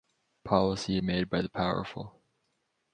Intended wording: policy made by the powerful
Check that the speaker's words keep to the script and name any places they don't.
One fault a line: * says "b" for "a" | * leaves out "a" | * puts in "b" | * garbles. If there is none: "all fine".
all fine